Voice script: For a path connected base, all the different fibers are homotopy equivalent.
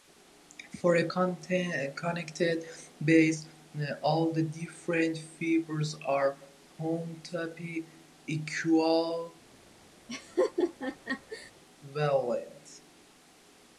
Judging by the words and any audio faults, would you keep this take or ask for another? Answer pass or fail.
fail